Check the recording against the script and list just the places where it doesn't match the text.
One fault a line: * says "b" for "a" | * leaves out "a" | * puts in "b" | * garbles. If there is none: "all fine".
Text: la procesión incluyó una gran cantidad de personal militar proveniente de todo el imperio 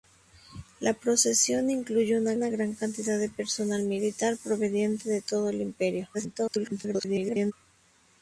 * puts in "una"
* garbles